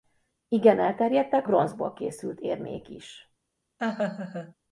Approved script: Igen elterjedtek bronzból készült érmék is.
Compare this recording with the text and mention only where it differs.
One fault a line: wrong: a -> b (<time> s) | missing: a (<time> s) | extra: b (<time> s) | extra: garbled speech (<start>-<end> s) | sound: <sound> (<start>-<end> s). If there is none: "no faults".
sound: laugh (3.8-4.5 s)